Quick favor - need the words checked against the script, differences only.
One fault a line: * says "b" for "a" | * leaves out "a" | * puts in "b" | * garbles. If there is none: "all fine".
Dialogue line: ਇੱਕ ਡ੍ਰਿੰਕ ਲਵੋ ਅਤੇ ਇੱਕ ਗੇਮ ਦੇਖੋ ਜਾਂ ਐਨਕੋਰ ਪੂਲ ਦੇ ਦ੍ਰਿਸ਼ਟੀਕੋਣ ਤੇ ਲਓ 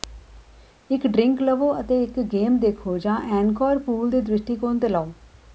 all fine